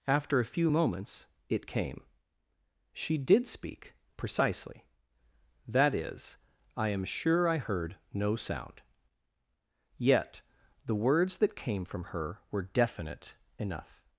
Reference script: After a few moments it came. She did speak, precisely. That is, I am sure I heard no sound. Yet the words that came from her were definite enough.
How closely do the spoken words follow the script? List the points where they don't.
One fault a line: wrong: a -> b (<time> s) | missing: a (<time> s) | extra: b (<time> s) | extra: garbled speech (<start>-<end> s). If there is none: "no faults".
no faults